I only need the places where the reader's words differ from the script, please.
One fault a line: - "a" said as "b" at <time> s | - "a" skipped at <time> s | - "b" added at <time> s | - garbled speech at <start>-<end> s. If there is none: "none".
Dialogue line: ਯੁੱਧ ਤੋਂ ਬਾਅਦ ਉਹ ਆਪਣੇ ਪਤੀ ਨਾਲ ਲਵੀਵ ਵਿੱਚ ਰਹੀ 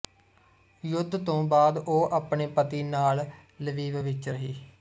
none